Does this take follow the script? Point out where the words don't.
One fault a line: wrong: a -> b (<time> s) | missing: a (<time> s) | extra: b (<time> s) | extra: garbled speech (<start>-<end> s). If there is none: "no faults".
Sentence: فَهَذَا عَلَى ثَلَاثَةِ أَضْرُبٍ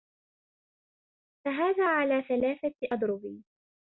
no faults